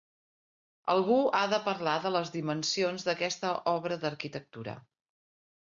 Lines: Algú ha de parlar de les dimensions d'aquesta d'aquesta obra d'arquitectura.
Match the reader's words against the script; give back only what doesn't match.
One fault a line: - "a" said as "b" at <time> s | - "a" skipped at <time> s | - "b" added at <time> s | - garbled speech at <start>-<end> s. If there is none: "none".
- "d'aquesta" skipped at 3.5 s